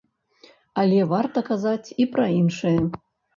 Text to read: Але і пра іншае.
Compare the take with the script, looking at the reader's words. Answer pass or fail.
fail